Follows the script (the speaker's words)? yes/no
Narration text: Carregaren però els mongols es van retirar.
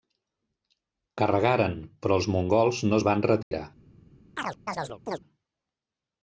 no